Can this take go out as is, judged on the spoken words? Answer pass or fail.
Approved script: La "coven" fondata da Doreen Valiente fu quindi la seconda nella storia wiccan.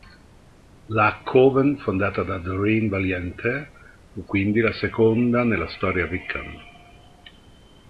pass